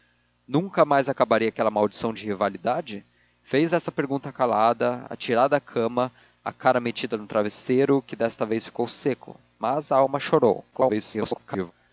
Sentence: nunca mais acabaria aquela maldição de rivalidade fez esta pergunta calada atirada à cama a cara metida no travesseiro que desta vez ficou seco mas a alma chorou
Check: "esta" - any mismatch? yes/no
no